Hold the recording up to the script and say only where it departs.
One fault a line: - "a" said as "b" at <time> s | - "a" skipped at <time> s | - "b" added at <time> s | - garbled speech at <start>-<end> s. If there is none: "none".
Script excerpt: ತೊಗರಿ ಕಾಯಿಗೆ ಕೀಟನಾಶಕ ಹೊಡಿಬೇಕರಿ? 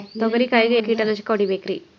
none